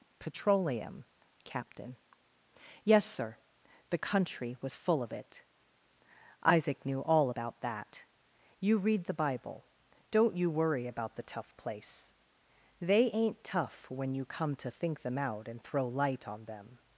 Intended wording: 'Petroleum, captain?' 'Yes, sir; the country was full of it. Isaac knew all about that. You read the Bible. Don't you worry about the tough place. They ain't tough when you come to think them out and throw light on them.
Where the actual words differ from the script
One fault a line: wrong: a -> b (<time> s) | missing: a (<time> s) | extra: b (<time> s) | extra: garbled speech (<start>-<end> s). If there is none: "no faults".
no faults